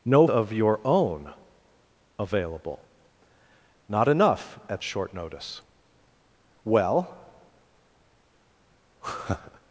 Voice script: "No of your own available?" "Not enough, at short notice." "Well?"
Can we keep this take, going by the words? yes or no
yes